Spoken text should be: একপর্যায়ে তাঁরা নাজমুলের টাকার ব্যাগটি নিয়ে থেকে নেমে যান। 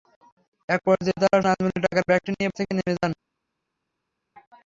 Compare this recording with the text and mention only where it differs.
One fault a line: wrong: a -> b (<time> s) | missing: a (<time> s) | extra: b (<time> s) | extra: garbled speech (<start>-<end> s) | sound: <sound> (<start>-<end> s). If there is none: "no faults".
no faults